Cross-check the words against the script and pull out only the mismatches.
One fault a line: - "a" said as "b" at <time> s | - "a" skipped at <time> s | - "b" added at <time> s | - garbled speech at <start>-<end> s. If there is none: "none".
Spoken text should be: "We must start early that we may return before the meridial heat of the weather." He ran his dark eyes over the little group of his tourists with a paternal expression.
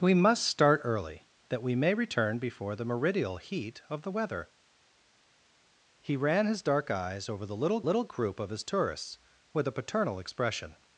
- "little" added at 7.9 s